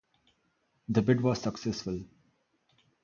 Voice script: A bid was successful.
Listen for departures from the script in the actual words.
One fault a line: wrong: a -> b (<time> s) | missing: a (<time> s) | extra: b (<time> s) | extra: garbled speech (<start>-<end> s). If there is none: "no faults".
wrong: A -> The (0.9 s)